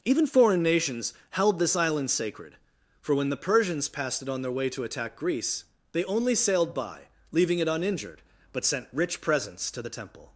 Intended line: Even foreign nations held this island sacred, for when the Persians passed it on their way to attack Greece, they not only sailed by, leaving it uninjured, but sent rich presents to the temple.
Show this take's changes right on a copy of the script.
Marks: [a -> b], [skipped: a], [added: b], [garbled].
Even foreign nations held this island sacred, for when the Persians passed it on their way to attack Greece, they [skipped: not] only sailed by, leaving it uninjured, but sent rich presents to the temple.